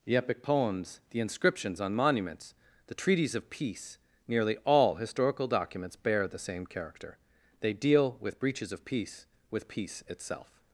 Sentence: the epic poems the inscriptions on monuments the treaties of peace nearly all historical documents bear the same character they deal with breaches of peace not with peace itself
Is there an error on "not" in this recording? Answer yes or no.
yes